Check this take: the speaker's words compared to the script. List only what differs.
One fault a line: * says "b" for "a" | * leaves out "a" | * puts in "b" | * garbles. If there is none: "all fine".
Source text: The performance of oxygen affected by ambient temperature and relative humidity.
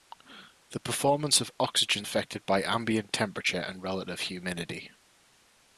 all fine